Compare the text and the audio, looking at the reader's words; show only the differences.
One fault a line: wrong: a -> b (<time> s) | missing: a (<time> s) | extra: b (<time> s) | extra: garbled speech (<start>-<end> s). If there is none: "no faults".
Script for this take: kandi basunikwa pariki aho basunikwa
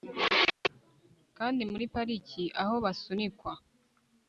wrong: basunikwa -> muri (1.7 s)